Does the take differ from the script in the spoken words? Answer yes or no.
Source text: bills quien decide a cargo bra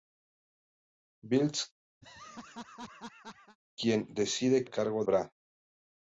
no